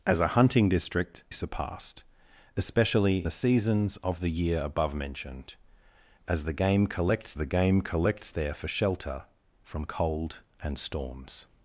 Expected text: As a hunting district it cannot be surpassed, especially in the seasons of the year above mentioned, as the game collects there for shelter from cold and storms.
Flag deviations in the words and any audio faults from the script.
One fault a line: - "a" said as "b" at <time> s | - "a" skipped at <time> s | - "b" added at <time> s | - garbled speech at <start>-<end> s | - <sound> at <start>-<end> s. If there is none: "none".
- "it cannot be" skipped at 1.2 s
- "in" skipped at 3.3 s
- "the game collects" added at 7.4 s